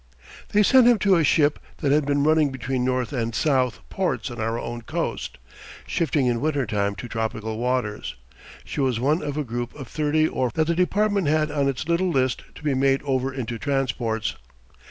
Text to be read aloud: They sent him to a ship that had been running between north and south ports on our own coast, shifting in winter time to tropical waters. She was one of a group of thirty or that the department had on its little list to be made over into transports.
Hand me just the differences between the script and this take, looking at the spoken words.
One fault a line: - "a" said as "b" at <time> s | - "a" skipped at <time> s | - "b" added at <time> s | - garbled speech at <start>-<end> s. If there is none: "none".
none